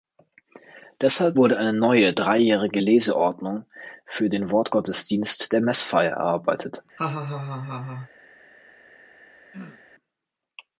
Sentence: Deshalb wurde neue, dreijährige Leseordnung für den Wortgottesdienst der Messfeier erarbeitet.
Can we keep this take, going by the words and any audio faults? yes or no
no